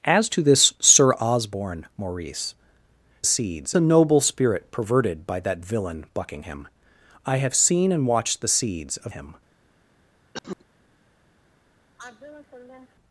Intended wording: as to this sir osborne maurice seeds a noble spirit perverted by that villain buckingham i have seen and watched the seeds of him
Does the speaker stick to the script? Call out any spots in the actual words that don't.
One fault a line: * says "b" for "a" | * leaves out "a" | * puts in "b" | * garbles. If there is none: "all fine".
all fine